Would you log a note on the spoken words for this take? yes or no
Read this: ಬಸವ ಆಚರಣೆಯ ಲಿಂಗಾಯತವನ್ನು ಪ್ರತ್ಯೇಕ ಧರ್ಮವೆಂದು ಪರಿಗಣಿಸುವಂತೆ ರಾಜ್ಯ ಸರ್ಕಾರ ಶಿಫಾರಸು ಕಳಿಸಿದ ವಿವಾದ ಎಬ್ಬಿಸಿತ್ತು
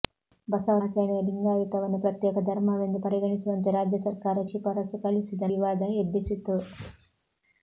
no